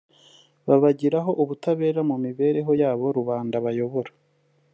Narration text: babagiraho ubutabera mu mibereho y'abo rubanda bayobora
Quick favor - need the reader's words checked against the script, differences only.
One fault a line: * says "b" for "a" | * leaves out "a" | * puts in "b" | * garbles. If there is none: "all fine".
all fine